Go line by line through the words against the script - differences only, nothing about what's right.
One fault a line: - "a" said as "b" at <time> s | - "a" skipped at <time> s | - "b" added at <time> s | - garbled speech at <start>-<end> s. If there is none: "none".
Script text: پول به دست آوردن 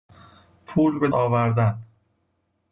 - "دست" skipped at 1.1 s